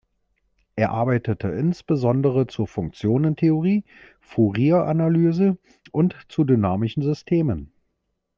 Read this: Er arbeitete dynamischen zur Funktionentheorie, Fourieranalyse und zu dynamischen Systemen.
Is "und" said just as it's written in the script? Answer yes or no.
yes